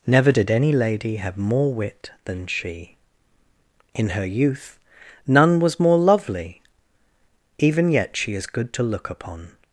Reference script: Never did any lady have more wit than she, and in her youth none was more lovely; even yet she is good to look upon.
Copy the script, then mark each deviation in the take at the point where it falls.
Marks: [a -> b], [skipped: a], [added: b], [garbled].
Never did any lady have more wit than she, [skipped: and] in her youth none was more lovely; even yet she is good to look upon.